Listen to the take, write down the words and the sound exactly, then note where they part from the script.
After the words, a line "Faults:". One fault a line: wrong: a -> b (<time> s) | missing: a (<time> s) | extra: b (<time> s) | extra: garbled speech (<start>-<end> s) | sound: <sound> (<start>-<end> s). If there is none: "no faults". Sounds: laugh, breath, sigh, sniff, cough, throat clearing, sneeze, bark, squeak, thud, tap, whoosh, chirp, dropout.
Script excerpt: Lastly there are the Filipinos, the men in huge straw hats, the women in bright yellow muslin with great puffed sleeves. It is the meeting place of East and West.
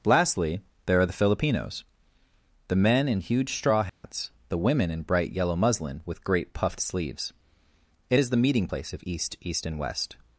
Lastly there are the Filipinos, the men in huge straw hats, the women in bright yellow muslin with great puffed sleeves. It is the meeting place of East East and West.
Faults:
sound: dropout (3.9-4.0 s)
extra: East (9.4 s)